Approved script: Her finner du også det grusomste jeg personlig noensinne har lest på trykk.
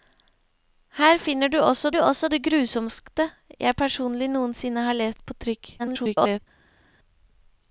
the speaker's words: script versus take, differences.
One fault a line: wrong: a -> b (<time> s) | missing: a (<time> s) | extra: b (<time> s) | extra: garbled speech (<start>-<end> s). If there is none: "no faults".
extra: du også (1.9 s)
extra: garbled speech (5.8-6.4 s)